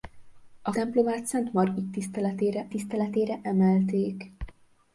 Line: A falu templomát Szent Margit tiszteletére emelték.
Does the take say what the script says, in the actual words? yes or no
no